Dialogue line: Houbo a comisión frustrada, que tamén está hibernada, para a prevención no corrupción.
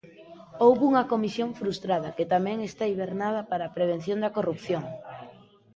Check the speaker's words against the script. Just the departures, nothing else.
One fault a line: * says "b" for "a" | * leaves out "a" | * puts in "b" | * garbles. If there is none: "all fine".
* says "unha" for "a"
* says "da" for "no"